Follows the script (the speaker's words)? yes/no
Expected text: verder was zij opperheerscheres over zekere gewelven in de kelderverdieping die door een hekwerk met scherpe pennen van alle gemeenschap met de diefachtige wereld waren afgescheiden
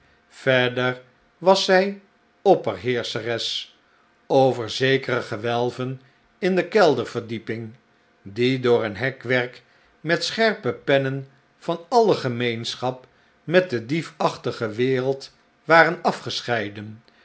yes